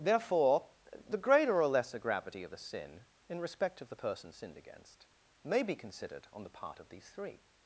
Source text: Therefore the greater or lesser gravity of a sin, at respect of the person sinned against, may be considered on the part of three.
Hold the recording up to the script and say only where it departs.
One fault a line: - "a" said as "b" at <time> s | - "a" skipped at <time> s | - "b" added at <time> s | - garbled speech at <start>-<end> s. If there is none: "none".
- "at" said as "in" at 3.3 s
- "these" added at 6.9 s